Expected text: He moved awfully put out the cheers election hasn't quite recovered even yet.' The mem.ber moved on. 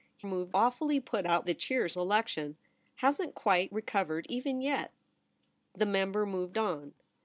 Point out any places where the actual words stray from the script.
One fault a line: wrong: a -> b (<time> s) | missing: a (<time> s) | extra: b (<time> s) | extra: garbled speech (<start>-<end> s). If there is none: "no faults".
no faults